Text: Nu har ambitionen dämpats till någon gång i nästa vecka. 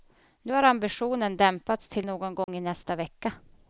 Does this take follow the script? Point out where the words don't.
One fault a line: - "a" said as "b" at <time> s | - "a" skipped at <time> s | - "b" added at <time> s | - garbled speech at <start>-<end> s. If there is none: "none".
none